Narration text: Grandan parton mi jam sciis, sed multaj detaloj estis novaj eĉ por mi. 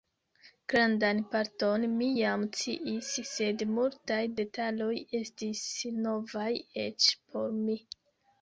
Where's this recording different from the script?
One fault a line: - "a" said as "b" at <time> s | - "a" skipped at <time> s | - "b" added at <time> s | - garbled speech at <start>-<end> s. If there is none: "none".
none